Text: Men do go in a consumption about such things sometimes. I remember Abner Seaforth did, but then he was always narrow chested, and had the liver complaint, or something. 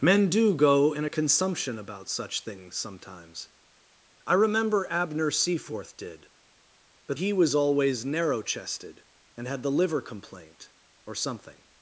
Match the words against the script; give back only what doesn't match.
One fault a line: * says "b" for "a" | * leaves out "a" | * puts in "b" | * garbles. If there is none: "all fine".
* leaves out "then"